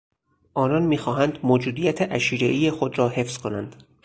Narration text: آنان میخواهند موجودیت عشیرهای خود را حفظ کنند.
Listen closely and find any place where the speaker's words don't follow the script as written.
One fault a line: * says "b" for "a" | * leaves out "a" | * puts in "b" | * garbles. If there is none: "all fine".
all fine